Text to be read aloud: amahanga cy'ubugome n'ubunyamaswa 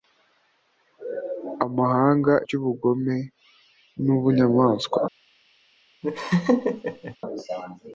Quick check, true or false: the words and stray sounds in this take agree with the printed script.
false